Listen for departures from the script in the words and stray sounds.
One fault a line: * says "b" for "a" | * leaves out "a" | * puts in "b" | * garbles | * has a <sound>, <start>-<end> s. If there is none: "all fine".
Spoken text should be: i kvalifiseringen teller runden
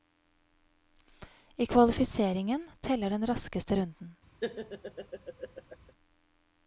* puts in "den raskeste"
* has a laugh, 4.4-5.9 s